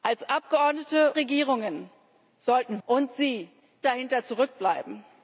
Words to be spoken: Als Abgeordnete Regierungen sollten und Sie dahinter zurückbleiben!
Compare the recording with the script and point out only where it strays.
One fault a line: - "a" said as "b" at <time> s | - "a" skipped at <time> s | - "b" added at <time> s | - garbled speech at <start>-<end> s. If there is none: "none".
none